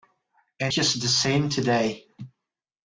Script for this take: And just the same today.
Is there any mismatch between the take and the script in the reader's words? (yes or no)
no